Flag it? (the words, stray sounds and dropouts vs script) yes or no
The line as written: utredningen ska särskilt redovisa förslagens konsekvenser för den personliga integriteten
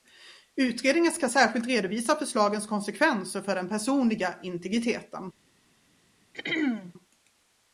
yes